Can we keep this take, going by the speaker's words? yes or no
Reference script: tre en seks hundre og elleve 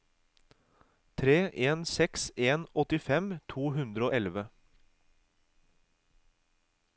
no